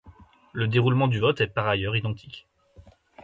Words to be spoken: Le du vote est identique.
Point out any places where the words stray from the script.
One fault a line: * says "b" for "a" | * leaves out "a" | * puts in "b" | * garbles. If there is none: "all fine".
* puts in "déroulement"
* puts in "par ailleurs"